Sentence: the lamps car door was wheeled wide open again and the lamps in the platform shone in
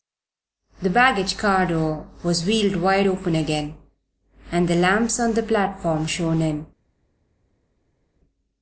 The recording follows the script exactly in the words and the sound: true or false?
false